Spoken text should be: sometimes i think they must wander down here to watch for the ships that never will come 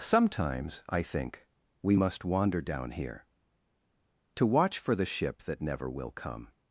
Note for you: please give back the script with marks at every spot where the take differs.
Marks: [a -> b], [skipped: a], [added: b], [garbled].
sometimes i think [they -> we] must wander down here to watch for the [ships -> ship] that never will come